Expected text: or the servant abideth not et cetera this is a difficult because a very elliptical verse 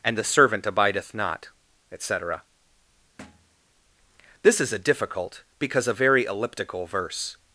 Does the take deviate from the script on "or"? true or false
true